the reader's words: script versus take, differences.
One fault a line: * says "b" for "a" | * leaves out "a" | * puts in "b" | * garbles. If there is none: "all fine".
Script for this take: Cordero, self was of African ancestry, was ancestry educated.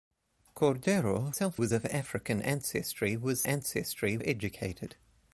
all fine